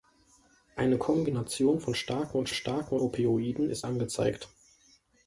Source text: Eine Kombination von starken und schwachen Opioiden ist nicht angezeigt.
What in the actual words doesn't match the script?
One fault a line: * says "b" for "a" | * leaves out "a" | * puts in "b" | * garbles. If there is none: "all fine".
* says "starken" for "schwachen"
* leaves out "nicht"